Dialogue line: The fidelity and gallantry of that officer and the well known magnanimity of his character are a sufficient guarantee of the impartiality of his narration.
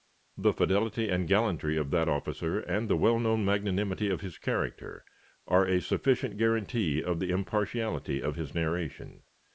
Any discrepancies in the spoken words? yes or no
no